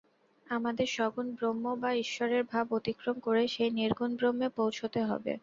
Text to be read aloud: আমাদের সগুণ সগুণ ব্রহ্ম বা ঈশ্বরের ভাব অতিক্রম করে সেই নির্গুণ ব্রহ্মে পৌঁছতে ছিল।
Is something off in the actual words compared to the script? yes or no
yes